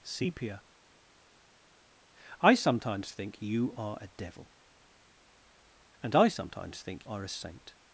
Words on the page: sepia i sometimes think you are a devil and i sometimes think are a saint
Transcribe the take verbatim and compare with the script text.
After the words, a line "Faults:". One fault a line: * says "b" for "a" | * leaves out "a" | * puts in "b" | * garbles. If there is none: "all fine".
sepia i sometimes think you are a devil and i sometimes think are a saint
Faults:
all fine